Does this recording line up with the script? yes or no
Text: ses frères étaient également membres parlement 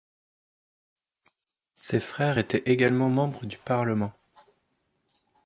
no